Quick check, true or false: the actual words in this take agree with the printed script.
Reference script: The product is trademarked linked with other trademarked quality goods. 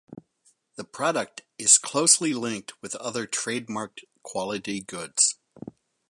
false